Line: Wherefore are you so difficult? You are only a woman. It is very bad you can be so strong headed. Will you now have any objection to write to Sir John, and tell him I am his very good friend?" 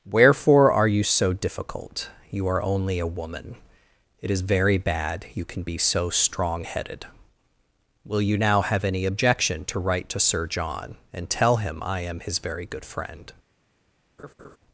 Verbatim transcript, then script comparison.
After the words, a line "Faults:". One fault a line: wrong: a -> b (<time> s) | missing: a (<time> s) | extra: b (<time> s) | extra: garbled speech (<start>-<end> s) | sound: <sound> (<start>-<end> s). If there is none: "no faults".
Wherefore are you so difficult? You are only a woman. It is very bad you can be so strong headed. Will you now have any objection to write to Sir John, and tell him I am his very good friend?"
Faults:
sound: laugh (14.2-14.6 s)